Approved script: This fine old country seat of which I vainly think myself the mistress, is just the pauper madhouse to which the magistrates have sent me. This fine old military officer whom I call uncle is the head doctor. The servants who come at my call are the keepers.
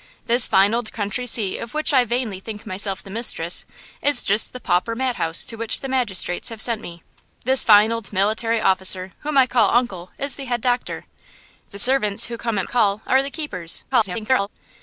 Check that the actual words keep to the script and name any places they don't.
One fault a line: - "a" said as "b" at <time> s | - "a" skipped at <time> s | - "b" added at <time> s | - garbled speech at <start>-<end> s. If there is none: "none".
- "my" skipped at 12.6 s
- garbled speech at 13.9-14.5 s